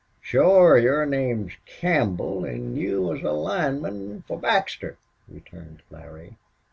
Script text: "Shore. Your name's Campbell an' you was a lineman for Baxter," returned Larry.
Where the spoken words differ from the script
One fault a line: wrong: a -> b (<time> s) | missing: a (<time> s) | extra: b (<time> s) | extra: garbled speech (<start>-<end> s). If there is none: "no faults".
no faults